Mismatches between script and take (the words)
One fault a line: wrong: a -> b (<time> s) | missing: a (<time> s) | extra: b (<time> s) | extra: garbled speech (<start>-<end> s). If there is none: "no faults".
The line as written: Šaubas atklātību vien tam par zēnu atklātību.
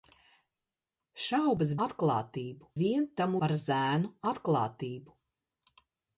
no faults